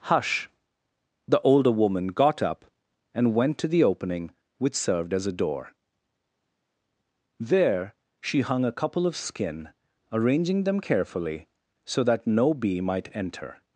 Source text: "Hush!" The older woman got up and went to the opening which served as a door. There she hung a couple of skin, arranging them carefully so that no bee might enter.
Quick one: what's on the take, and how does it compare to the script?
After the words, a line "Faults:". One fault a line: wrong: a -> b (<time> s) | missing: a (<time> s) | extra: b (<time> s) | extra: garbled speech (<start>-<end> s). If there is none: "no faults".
"Hush!" The older woman got up and went to the opening which served as a door. There she hung a couple of skin, arranging them carefully so that no bee might enter.
Faults:
no faults